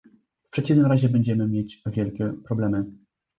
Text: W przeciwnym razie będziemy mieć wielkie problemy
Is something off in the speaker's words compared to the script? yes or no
no